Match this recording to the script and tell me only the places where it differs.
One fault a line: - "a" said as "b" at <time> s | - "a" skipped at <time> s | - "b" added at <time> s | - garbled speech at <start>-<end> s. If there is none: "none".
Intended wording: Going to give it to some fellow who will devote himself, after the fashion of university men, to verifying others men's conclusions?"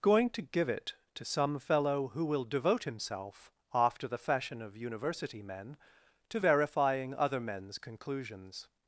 - "others" said as "other" at 7.1 s